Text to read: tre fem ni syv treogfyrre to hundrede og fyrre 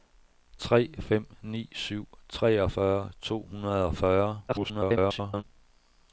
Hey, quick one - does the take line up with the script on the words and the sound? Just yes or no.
no